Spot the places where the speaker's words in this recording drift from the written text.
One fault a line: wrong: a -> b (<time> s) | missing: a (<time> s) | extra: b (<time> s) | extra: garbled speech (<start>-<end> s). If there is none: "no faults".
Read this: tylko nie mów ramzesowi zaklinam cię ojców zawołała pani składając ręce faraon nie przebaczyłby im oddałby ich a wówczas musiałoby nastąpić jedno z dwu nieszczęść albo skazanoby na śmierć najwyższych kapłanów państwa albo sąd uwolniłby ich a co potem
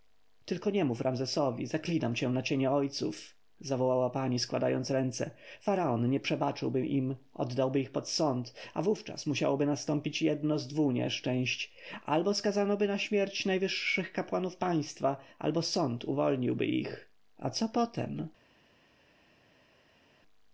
extra: na cienie (2.3 s)
extra: pod sąd (7.9 s)